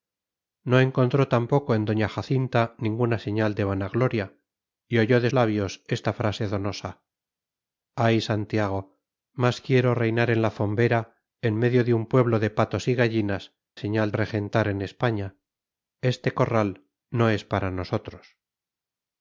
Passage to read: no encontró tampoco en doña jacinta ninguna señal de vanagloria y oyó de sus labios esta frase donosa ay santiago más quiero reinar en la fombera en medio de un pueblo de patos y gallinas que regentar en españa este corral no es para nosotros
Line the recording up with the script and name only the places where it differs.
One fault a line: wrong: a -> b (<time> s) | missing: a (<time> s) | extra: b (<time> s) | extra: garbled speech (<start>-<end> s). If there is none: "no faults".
missing: sus (5.3 s)
wrong: que -> señal (13.8 s)